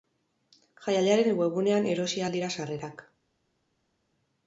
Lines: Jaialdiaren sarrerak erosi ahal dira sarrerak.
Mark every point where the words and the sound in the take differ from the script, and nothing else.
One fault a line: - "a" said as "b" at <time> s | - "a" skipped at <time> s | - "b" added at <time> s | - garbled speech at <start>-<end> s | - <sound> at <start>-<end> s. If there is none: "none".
- "sarrerak" said as "webgunean" at 1.4 s